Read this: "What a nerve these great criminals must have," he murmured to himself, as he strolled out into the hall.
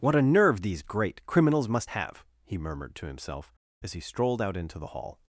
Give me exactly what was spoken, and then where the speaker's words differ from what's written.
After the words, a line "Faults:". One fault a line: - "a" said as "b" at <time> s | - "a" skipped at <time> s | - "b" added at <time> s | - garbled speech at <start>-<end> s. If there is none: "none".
"What a nerve these great criminals must have," he murmured to himself, as he strolled out into the hall.
Faults:
none